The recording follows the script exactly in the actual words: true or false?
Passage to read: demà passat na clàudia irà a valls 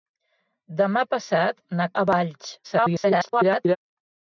false